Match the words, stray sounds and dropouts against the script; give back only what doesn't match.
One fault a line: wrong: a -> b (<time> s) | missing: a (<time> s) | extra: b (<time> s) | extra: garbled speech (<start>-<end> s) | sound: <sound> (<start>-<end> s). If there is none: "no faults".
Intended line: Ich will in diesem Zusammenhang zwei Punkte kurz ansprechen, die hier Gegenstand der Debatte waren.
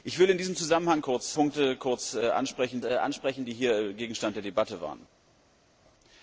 wrong: zwei -> kurz (1.0 s)
extra: ansprechen (2.8 s)